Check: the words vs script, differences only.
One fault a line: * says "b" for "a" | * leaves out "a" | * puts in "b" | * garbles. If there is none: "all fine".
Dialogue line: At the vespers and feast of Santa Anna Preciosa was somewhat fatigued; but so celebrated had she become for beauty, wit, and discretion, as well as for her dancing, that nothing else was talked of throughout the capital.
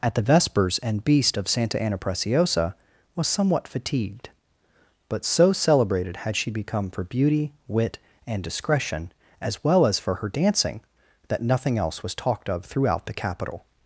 * says "beast" for "feast"